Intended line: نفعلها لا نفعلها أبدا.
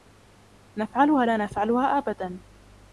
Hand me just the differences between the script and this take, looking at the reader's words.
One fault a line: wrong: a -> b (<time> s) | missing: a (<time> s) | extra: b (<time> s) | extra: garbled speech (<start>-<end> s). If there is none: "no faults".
no faults